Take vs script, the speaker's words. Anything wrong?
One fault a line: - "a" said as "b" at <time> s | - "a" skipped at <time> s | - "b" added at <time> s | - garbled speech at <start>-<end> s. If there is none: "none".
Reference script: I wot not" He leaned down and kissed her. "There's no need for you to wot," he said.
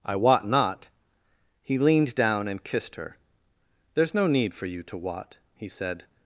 none